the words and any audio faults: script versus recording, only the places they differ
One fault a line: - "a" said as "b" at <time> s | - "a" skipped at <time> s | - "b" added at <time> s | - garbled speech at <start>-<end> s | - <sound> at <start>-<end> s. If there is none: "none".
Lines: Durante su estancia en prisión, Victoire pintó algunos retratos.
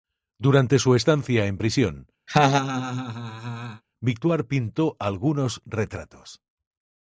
- laugh at 2.3-3.8 s